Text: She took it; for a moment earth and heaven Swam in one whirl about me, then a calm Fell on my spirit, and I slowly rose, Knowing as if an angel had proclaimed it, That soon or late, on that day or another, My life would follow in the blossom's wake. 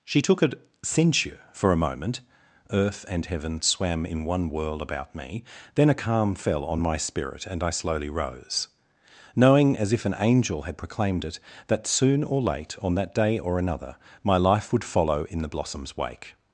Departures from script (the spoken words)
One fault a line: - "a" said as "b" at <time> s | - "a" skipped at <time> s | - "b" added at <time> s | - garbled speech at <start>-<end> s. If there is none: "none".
- "it" said as "a censure" at 0.4 s